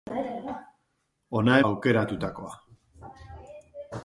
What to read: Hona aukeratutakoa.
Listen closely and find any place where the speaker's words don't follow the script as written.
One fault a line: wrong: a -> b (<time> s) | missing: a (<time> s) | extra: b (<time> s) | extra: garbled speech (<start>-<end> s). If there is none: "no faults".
no faults